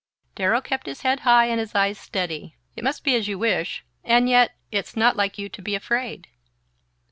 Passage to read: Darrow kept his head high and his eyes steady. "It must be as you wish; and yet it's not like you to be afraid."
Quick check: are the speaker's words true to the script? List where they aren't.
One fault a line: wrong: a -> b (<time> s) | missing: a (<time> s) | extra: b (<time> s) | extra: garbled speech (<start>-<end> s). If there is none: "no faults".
no faults